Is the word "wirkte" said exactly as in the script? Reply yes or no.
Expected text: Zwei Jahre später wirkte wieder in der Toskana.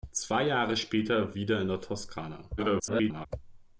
no